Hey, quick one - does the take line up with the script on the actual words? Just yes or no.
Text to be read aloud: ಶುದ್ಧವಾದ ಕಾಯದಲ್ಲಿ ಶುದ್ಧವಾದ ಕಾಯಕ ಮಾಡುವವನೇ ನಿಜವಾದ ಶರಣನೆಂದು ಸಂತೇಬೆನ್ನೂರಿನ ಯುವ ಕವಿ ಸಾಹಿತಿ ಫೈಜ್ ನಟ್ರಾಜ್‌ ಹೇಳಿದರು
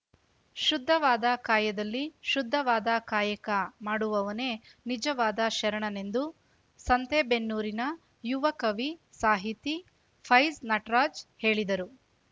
yes